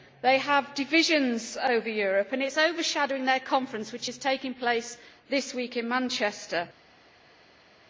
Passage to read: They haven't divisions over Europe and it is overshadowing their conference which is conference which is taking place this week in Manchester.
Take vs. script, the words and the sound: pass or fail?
fail